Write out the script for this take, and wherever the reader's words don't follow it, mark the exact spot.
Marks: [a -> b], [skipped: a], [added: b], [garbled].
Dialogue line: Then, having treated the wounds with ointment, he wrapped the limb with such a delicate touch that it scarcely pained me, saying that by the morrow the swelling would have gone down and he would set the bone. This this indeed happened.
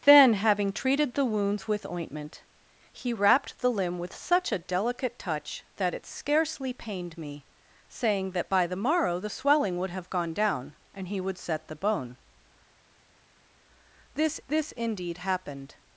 Then, having treated the wounds with ointment, he wrapped the limb with such a delicate touch that it scarcely pained me, saying that by the morrow the swelling would have gone down and he would set the bone. This this indeed happened.